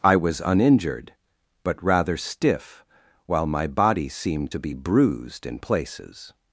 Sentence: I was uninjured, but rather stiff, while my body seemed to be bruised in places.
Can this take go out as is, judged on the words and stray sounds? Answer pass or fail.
pass